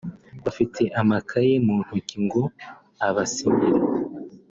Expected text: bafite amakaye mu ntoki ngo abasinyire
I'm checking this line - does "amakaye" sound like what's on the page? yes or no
yes